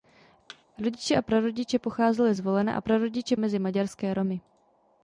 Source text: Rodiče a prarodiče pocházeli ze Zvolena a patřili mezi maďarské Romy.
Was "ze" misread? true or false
true